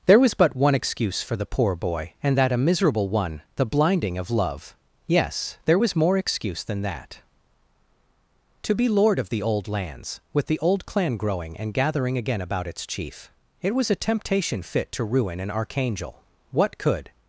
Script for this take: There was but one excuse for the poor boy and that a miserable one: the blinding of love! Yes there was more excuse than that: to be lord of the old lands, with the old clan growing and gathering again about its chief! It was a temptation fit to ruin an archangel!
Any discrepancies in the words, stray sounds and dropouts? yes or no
yes